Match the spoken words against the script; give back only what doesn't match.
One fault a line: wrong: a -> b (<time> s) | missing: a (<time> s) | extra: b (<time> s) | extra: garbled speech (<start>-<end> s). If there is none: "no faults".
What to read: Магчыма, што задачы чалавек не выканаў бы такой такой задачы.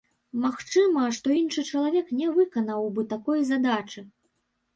wrong: задачы -> іншы (1.4 s)
missing: такой (3.4 s)